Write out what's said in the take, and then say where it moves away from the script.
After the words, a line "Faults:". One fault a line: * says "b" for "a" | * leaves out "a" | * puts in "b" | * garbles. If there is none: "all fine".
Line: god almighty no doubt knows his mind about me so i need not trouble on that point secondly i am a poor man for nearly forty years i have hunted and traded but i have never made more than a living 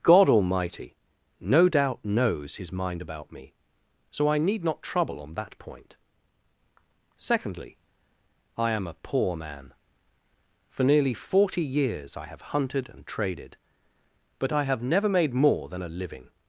god almighty no doubt knows his mind about me so i need not trouble on that point secondly i am a poor man for nearly forty years i have hunted and traded but i have never made more than a living
Faults:
all fine